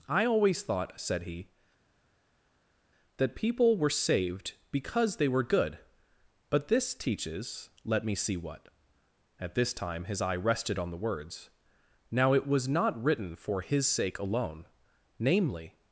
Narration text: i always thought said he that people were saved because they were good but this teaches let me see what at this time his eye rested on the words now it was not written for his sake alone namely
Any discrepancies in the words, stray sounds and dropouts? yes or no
no